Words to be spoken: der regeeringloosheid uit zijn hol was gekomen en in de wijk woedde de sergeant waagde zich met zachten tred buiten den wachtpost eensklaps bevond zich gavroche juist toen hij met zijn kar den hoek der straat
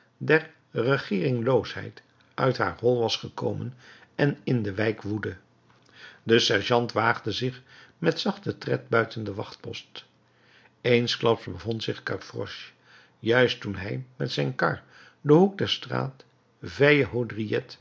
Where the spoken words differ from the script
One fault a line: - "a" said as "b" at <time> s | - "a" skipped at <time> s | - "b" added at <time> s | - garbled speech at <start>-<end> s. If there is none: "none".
- "zijn" said as "haar" at 2.6 s